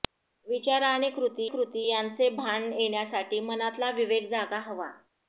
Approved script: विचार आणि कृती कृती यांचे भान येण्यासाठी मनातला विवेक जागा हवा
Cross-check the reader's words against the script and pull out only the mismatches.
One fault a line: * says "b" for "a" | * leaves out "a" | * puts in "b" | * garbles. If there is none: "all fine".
all fine